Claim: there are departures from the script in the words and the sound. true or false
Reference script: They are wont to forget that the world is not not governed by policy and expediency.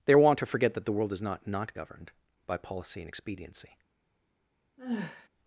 true